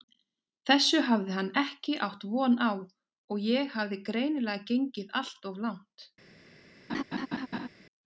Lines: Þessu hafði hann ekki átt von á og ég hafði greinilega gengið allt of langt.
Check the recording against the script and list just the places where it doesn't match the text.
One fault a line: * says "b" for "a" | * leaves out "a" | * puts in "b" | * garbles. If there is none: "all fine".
all fine